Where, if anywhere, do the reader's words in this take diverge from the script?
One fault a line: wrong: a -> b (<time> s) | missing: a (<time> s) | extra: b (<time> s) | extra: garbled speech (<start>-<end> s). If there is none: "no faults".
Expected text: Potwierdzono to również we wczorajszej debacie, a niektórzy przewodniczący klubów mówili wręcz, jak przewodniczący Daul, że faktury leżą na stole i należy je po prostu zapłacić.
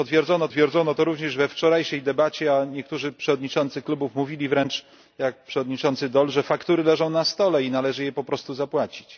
extra: potwierdzono (0.4 s)